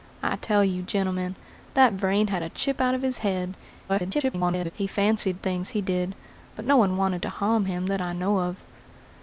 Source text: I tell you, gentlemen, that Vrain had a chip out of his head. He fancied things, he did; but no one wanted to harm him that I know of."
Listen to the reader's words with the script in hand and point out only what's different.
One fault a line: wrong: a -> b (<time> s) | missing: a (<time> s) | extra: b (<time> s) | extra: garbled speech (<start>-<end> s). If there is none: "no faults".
extra: garbled speech (3.9-4.7 s)